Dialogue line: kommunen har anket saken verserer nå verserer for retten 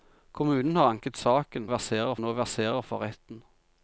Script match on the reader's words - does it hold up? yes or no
yes